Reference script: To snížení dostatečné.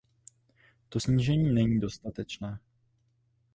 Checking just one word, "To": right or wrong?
right